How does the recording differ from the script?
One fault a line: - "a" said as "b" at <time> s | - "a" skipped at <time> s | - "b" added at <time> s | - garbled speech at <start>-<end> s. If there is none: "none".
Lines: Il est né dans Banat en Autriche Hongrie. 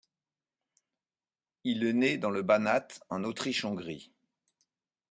- "le" added at 2.3 s